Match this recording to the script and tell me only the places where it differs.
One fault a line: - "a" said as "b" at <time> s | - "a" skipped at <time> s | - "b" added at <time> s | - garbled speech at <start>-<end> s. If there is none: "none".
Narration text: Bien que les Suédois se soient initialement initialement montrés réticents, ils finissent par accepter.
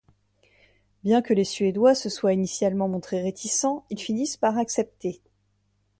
- "initialement" skipped at 2.9 s